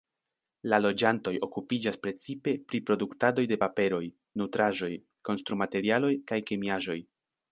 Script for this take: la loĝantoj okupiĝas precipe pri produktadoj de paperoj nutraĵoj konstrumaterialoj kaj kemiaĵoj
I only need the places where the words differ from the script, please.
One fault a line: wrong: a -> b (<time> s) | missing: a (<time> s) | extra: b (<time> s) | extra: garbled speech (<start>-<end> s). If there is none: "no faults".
no faults